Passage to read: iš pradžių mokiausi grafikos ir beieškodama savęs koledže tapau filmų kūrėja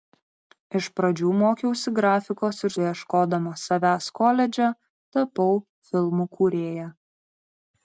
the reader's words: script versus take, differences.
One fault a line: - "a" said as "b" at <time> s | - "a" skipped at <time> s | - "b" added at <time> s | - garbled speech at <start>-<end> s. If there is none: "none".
none